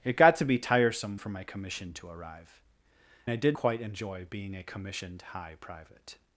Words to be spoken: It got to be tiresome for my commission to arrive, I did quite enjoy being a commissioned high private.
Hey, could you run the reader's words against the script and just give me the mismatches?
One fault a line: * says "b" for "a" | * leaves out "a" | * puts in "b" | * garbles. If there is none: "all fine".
all fine